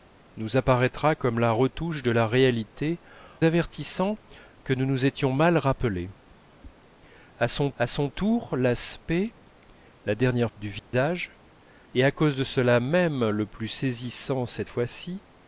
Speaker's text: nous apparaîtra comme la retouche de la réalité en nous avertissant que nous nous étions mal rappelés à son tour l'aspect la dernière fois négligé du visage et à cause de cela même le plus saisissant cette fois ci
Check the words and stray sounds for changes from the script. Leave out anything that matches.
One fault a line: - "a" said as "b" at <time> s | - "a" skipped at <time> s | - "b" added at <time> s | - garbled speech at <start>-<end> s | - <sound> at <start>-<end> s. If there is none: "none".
- "en nous" skipped at 3.0 s
- "à son" added at 7.8 s
- "fois négligé" skipped at 10.5 s
- dropout at 10.8-10.9 s